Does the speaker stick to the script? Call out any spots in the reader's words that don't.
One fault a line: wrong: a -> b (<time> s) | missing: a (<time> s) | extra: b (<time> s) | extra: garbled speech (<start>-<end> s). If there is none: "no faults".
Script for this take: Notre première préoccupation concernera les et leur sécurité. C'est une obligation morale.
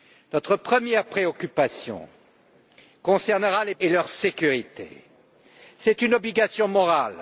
no faults